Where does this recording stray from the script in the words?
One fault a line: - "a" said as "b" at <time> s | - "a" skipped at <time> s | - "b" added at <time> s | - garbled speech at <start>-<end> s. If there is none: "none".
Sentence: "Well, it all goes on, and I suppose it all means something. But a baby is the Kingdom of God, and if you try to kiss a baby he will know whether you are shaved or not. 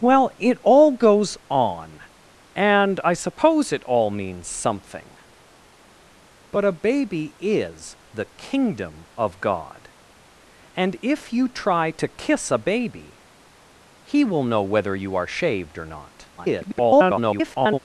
- garbled speech at 16.4-17.8 s